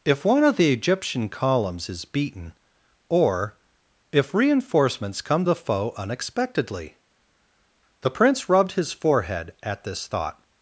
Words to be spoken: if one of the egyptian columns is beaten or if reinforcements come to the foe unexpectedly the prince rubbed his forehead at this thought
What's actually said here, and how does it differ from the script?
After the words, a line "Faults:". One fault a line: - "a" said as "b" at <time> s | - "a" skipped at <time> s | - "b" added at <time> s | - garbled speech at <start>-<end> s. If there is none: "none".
if one of the egyptian columns is beaten or if reinforcements come the foe unexpectedly the prince rubbed his forehead at this thought
Faults:
- "to" skipped at 5.5 s